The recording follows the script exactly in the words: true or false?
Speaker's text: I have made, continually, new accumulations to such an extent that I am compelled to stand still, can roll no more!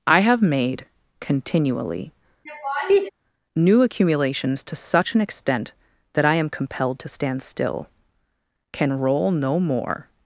true